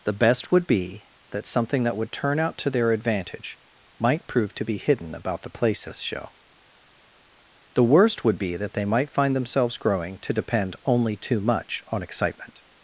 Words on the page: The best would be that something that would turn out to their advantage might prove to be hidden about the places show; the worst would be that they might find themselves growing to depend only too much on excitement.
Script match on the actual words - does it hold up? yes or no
yes